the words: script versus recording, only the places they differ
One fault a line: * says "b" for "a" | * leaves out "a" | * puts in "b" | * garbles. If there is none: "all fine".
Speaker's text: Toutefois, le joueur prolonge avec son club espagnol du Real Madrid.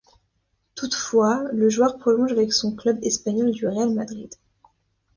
all fine